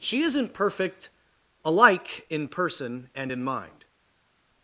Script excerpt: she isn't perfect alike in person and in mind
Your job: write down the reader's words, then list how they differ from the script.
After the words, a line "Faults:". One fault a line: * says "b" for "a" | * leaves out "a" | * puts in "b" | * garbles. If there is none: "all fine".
she isn't perfect alike in person and in mind
Faults:
all fine